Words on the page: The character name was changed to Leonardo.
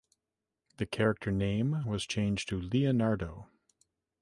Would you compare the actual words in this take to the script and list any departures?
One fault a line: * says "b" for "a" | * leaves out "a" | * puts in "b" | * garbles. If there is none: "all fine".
all fine